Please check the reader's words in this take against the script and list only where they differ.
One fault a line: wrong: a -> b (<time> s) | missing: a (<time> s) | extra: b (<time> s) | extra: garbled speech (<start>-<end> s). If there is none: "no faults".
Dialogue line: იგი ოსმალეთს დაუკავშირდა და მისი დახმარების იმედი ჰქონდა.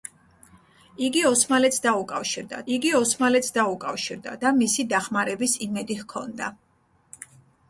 extra: იგი ოსმალეთს დაუკავშირდა (2.8 s)